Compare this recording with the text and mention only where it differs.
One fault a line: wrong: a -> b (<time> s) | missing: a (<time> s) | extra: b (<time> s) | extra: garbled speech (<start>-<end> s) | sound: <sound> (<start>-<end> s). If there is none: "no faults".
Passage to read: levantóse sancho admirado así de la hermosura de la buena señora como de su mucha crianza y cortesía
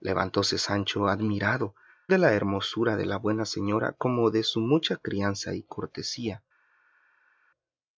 missing: así (1.8 s)